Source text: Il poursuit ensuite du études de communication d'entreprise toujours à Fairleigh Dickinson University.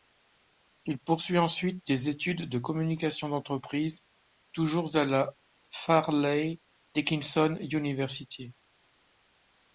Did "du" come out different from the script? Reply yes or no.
yes